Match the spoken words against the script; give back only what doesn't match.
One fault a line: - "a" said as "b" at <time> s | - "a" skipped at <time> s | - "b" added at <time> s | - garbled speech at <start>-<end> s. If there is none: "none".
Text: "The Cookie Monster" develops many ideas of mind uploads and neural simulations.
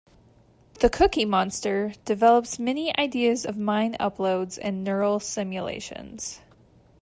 none